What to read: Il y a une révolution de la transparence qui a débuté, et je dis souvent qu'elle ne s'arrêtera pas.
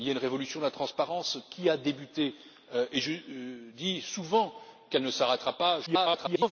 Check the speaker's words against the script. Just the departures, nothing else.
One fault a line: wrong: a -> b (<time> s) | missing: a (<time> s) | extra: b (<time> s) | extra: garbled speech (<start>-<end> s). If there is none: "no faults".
extra: garbled speech (5.9-6.5 s)